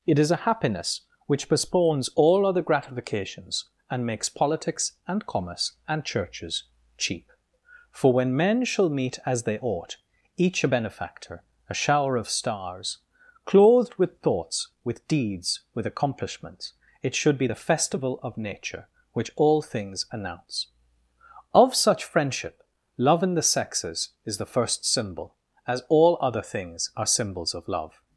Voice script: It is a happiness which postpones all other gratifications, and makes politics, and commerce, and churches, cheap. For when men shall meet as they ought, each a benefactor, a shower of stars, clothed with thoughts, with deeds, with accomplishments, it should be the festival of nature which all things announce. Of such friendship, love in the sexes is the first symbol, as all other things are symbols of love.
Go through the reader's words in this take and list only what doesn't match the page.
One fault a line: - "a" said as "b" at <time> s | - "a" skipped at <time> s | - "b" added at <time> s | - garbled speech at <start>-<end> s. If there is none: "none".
none